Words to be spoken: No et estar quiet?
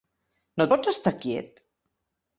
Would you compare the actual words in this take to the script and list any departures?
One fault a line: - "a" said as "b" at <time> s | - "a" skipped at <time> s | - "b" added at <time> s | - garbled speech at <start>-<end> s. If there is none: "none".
- "pots" added at 0.7 s